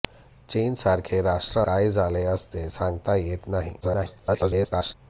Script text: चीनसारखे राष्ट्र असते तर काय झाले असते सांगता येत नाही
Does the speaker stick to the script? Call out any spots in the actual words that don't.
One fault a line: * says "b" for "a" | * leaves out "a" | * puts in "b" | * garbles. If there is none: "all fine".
* leaves out "असते तर"
* garbles